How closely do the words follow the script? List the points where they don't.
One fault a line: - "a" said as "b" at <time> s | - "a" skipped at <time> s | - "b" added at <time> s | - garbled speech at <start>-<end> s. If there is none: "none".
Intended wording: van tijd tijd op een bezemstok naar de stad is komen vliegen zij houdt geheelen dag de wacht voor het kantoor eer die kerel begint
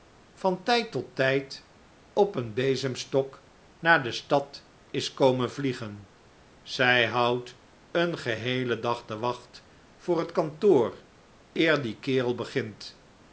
- "tot" added at 0.9 s
- "een" added at 7.9 s